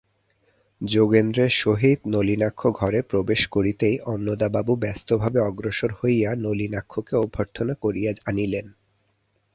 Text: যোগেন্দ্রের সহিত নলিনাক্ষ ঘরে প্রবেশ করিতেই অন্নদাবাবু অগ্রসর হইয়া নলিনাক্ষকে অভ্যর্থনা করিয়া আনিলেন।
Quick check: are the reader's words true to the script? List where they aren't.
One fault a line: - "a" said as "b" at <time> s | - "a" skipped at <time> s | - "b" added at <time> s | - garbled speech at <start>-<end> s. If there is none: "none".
- "ব্যস্তভাবে" added at 4.8 s